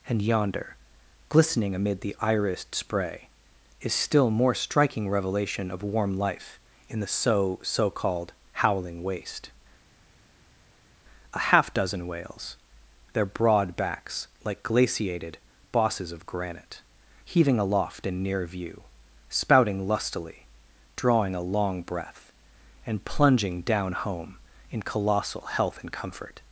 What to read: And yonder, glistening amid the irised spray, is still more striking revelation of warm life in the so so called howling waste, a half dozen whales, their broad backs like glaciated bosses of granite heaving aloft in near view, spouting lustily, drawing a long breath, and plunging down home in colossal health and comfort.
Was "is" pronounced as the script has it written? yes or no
yes